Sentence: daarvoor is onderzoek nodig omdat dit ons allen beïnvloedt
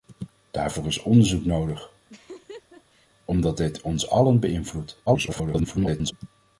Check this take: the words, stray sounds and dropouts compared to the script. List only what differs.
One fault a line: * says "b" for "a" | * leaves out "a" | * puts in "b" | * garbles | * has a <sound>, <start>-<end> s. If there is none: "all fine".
* has a laugh, 2.1-3.1 s
* garbles